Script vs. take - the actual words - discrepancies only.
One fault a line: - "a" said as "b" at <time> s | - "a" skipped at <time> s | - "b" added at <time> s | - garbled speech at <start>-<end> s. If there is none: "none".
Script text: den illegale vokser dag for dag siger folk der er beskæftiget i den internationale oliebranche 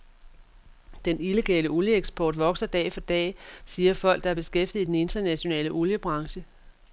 - "olieeksport" added at 1.7 s